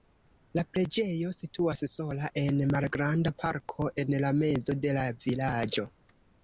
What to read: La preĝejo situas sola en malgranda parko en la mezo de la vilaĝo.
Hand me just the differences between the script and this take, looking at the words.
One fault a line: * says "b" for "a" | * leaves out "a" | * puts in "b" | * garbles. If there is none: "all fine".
all fine